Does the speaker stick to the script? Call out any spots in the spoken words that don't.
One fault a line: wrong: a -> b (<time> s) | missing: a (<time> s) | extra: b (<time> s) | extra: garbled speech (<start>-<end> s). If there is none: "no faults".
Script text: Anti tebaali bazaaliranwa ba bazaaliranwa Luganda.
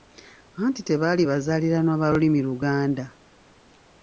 wrong: bazaaliranwa -> lulimi (2.1 s)